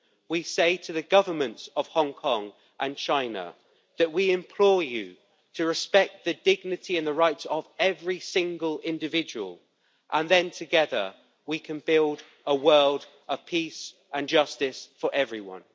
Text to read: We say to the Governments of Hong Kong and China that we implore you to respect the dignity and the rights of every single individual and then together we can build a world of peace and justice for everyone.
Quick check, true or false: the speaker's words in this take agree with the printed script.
true